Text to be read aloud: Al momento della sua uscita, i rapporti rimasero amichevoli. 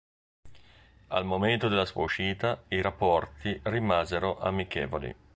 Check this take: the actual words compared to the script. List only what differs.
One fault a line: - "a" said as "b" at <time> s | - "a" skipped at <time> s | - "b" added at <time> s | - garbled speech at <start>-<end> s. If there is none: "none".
none